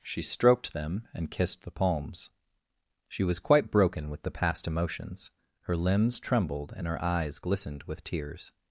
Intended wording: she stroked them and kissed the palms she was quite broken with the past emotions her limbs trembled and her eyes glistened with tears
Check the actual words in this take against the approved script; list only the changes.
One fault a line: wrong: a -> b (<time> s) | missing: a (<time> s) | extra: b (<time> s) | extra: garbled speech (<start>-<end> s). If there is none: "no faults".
no faults